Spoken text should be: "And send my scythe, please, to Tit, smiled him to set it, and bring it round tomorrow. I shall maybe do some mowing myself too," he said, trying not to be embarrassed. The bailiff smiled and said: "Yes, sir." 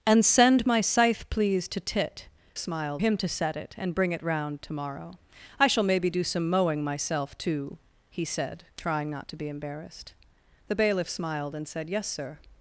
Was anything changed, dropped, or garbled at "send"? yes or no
no